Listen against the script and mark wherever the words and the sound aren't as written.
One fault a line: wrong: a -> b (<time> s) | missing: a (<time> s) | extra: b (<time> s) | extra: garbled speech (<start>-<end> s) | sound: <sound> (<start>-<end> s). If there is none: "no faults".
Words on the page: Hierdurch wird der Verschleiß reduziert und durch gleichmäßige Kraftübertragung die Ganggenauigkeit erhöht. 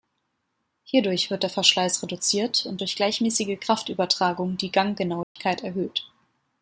sound: dropout (5.2-5.4 s)